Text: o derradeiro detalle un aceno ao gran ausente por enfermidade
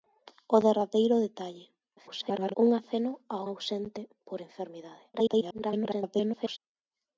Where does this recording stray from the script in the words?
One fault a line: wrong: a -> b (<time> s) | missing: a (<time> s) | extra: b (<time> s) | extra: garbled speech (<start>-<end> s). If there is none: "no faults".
extra: garbled speech (2.0-2.5 s)
missing: gran (3.4 s)
extra: garbled speech (5.1-6.6 s)